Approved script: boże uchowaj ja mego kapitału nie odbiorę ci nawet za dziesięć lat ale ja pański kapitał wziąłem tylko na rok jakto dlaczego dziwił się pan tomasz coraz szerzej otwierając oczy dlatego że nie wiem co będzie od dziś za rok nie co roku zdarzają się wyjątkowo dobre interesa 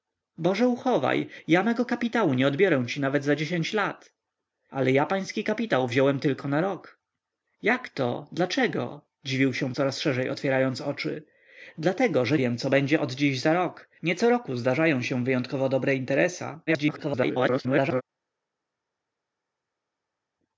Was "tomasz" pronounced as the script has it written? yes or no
no